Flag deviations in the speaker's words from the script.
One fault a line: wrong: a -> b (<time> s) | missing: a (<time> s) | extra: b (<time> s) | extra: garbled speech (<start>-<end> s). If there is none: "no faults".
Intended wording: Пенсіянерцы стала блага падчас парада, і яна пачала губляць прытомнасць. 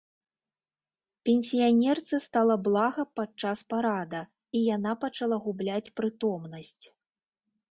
no faults